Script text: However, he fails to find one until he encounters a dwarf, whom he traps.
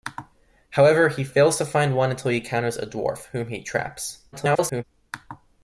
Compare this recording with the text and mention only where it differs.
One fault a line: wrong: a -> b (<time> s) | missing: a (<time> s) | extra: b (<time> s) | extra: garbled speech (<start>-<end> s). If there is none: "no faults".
extra: garbled speech (4.3-4.8 s)